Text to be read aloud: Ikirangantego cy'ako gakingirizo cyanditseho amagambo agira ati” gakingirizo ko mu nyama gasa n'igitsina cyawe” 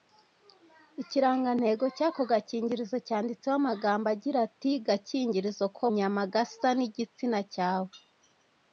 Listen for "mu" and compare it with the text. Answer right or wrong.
wrong